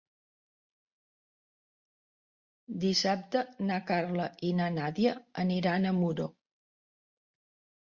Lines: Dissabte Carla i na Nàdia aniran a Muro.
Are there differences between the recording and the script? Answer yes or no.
yes